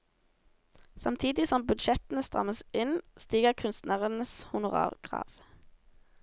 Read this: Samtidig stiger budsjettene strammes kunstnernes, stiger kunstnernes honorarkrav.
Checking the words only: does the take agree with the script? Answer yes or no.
no